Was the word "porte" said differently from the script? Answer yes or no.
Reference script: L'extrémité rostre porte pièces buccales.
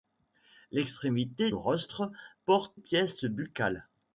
no